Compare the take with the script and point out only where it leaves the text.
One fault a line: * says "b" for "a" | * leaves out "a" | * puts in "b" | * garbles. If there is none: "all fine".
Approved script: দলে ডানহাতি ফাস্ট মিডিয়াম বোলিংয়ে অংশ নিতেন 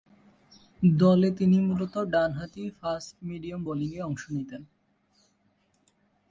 * puts in "তিনি মূলতঃ"